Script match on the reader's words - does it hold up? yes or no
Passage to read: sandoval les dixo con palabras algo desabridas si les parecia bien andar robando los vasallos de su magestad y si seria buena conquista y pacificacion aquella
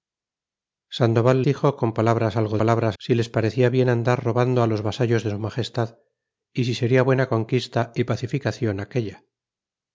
no